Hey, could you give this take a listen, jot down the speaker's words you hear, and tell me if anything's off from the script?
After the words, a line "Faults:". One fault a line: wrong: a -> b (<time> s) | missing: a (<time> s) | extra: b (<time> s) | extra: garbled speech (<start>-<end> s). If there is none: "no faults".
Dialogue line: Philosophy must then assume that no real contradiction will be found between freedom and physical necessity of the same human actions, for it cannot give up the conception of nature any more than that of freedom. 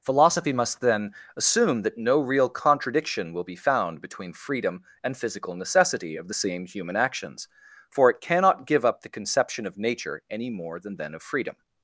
Philosophy must then assume that no real contradiction will be found between freedom and physical necessity of the same human actions, for it cannot give up the conception of nature any more than then of freedom.
Faults:
wrong: that -> then (11.0 s)